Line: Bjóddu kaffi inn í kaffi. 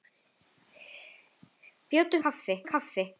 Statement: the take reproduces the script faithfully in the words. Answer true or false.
true